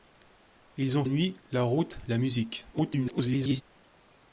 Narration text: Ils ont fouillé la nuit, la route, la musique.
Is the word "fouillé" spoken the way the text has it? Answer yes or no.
no